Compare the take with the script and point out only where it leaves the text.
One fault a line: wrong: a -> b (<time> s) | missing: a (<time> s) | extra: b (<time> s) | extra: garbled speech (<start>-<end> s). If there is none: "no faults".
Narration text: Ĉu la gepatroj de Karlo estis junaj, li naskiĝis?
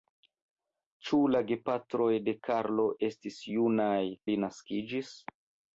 no faults